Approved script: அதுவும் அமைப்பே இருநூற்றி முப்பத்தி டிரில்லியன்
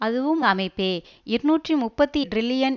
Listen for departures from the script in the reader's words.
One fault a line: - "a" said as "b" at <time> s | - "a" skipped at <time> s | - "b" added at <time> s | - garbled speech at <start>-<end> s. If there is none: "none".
none